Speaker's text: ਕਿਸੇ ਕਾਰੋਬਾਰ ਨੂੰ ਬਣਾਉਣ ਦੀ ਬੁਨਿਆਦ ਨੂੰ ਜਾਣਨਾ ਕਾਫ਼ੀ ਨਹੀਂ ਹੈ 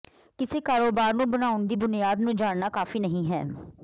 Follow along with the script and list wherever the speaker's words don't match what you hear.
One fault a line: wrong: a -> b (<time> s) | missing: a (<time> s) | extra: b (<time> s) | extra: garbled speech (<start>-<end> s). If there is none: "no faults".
no faults